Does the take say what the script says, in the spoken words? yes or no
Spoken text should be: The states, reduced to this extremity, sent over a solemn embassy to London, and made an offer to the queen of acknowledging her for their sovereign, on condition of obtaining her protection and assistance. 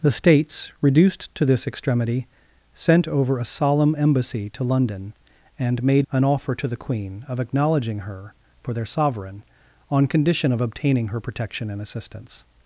yes